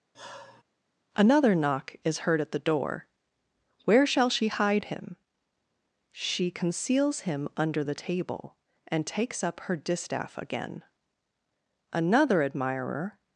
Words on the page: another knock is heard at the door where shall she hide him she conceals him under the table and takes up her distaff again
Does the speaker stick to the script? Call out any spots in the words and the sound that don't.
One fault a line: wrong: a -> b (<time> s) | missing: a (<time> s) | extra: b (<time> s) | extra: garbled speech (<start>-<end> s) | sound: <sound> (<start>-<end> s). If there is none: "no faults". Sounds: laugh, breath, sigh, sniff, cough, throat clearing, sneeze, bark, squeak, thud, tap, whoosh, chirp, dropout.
sound: sigh (0.1-0.6 s)
extra: another admirer (11.9 s)